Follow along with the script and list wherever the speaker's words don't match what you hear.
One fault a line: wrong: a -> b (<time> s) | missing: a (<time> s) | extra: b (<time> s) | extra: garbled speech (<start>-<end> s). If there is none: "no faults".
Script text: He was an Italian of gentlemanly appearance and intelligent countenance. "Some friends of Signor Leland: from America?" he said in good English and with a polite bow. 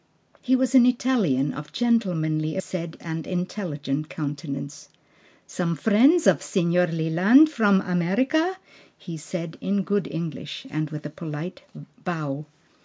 wrong: appearance -> said (2.6 s)